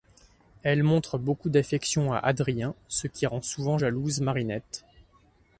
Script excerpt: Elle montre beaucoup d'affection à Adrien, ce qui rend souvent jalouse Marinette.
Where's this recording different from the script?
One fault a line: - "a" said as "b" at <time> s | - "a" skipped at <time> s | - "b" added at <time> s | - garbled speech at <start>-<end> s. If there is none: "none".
none